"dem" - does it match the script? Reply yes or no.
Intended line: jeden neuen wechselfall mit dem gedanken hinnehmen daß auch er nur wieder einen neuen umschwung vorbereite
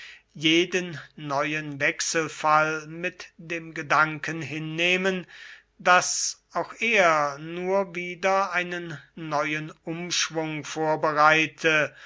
yes